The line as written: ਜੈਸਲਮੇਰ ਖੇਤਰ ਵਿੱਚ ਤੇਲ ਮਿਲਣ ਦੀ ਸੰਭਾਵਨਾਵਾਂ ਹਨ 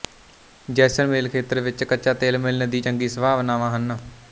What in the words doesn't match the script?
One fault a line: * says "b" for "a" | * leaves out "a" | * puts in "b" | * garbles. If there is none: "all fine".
* puts in "ਕੱਚਾ"
* puts in "ਚੰਗੀ"